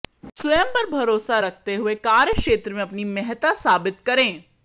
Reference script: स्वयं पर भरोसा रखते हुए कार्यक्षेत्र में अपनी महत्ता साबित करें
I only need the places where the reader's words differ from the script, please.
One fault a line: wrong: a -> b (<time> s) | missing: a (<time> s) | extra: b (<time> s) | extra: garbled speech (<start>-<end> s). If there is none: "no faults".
no faults